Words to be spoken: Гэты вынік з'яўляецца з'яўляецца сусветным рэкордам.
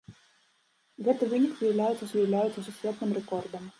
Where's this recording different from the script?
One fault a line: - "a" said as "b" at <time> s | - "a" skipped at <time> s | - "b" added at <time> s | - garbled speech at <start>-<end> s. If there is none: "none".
none